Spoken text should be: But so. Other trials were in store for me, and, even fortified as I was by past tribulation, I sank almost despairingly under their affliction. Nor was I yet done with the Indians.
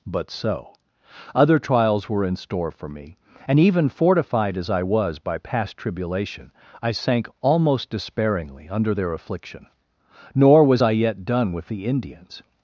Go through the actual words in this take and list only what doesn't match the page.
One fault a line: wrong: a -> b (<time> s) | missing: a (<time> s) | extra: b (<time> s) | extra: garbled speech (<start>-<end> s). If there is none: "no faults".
no faults